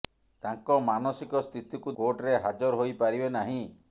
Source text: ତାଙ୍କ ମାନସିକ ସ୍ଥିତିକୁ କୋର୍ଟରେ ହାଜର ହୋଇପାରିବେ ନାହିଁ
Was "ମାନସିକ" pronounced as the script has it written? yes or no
yes